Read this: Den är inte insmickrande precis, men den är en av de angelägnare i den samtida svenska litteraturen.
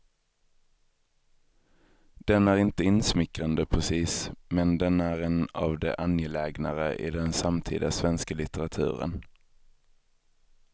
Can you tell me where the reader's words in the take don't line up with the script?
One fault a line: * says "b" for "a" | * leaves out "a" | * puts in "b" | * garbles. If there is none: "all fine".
all fine